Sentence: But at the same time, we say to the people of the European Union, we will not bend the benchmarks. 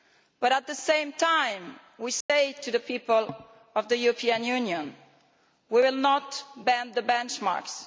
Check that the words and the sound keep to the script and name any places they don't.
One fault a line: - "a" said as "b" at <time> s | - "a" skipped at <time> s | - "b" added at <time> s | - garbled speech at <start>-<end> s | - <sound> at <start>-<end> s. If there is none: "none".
- dropout at 2.2-2.3 s